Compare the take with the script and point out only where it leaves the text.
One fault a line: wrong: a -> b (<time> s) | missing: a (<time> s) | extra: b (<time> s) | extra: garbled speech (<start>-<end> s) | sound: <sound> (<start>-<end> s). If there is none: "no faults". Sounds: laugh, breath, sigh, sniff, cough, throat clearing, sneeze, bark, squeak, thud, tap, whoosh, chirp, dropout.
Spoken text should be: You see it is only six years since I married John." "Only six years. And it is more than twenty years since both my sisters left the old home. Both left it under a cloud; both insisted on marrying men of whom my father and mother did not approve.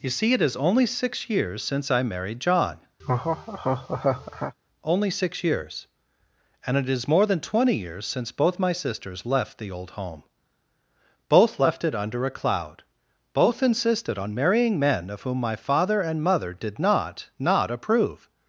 sound: laugh (3.0-4.5 s)
extra: not (17.4 s)